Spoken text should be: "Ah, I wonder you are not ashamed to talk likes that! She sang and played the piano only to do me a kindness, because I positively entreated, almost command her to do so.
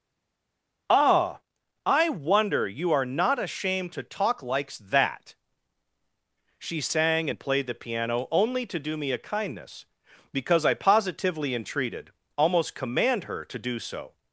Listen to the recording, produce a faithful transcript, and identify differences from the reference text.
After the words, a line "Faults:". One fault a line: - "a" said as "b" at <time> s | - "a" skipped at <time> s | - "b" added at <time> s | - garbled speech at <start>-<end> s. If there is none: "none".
"Ah, I wonder you are not ashamed to talk likes that! She sang and played the piano only to do me a kindness, because I positively entreated, almost command her to do so.
Faults:
none